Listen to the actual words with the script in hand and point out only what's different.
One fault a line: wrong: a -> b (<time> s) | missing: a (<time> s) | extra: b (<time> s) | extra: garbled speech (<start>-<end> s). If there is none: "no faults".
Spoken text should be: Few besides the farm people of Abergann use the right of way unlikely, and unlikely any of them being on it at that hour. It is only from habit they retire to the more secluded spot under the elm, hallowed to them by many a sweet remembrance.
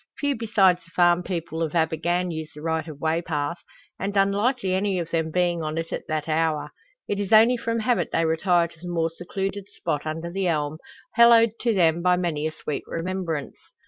wrong: unlikely -> path (3.2 s)